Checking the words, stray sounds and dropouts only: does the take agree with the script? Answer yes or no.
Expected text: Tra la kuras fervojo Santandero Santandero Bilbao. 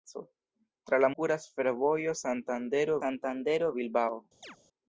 no